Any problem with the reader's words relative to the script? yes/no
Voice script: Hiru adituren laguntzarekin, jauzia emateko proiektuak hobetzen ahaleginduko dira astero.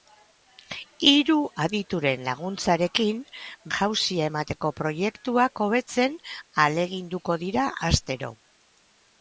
no